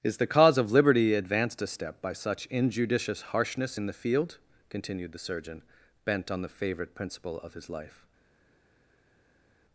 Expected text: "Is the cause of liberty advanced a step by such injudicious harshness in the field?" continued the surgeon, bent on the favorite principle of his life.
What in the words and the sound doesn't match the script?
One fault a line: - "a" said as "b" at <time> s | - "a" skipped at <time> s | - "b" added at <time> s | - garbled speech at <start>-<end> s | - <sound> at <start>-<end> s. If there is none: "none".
none